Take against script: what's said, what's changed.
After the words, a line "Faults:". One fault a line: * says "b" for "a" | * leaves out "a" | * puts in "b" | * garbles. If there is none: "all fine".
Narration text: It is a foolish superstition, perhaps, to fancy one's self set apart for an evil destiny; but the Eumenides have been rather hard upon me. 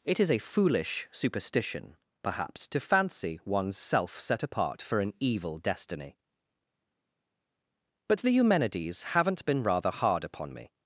It is a foolish superstition, perhaps, to fancy one's self set apart for an evil destiny; but the Eumenides haven't been rather hard upon me.
Faults:
* says "haven't" for "have"